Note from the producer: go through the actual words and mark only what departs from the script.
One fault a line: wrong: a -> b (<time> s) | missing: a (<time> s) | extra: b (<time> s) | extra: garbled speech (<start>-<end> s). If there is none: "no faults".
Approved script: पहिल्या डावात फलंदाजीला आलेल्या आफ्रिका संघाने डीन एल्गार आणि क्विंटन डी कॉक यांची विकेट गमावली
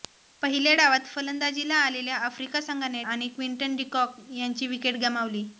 missing: डीन एल्गार (3.0 s)